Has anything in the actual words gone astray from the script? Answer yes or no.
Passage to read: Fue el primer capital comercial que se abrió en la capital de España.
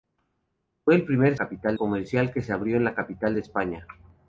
no